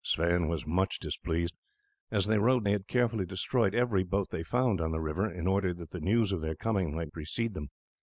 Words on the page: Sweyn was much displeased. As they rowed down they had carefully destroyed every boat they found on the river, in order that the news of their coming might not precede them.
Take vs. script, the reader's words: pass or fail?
fail